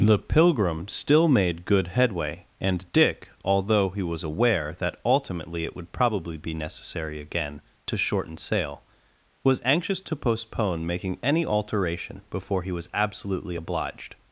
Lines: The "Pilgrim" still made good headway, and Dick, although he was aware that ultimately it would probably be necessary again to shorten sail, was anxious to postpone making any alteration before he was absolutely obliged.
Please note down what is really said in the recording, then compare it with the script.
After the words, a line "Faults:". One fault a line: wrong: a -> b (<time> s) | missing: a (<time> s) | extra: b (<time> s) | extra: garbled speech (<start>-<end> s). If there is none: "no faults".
The "Pilgrim" still made good headway, and Dick, although he was aware that ultimately it would probably be necessary again to shorten sail, was anxious to postpone making any alteration before he was absolutely obliged.
Faults:
no faults